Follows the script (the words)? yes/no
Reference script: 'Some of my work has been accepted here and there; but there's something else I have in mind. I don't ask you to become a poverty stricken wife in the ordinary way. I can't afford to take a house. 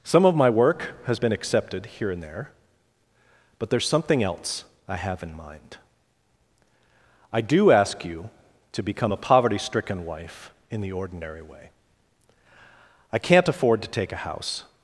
no